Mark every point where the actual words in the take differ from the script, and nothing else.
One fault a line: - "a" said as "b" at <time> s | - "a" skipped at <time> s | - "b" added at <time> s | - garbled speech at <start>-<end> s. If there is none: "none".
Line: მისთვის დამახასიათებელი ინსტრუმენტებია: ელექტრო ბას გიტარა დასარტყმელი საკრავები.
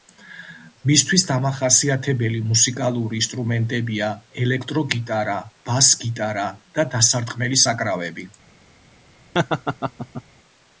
- "მუსიკალური" added at 2.5 s
- "გიტარა" added at 5.0 s
- "და" added at 6.8 s